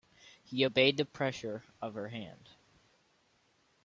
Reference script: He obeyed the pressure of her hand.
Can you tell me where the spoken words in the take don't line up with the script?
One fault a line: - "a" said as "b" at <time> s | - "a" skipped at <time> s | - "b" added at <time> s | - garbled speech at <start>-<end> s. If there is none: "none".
none